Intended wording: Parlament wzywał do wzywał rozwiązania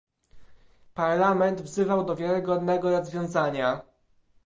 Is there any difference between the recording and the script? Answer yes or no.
yes